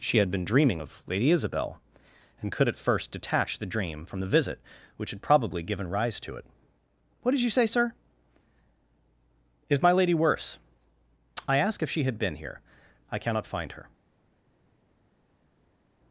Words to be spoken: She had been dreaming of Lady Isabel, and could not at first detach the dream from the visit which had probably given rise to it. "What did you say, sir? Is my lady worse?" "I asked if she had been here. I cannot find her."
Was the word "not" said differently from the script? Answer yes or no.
yes